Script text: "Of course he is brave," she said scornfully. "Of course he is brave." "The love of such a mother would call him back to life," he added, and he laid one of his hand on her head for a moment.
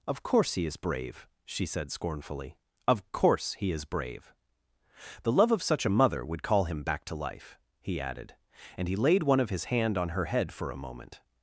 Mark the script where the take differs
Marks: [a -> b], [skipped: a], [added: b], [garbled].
"Of course he is brave," she said scornfully. "Of course he is brave." "The love of such a mother would call him back to life," he added, and he laid one of his hand on her head for a moment.